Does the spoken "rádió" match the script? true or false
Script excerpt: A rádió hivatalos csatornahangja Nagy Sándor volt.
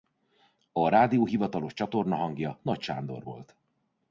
true